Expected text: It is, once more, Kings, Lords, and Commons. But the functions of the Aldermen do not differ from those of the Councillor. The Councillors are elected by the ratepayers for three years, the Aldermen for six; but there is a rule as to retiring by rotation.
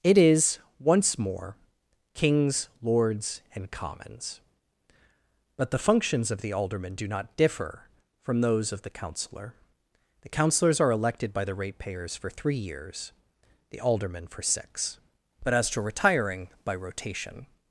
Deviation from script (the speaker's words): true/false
true